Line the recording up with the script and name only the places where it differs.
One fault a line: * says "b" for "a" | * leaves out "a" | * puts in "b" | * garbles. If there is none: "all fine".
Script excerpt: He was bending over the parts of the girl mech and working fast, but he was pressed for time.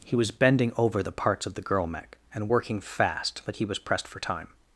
all fine